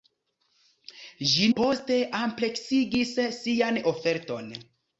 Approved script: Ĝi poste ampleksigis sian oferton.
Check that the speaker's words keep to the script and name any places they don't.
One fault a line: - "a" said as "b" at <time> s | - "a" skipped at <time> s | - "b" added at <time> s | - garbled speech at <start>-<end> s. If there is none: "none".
none